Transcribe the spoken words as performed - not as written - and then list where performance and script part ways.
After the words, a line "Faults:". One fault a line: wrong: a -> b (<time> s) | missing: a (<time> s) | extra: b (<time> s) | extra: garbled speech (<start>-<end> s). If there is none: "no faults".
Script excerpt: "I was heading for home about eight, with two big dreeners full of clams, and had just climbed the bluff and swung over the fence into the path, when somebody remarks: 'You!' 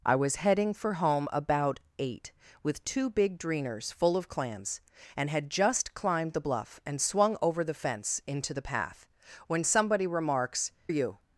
"I was heading for home about eight, with two big dreeners full of clams, and had just climbed the bluff and swung over the fence into the path, when somebody remarks: 'You!'
Faults:
no faults